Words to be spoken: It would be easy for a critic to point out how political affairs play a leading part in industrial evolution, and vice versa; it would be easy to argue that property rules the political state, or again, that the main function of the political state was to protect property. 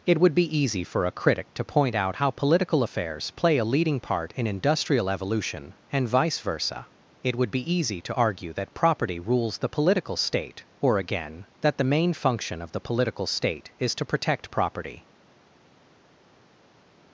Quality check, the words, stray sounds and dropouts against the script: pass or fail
fail